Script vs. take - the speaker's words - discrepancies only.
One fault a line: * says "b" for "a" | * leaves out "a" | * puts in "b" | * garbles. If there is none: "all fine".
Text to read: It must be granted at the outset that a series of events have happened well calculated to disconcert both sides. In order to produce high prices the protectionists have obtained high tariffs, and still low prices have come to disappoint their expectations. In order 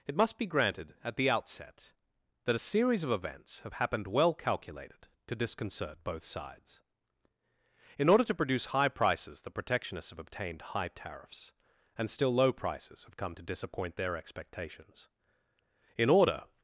all fine